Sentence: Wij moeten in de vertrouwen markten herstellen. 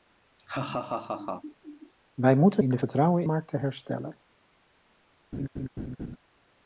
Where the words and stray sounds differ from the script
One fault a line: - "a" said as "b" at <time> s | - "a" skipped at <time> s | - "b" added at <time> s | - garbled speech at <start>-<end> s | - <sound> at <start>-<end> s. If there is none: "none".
- laugh at 0.4-1.9 s
- laugh at 5.3-6.2 s